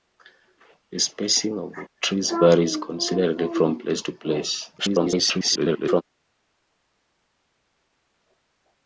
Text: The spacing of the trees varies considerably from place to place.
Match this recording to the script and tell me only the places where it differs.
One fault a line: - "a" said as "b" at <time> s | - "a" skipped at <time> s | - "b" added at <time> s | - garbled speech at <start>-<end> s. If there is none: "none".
- garbled speech at 4.8-6.0 s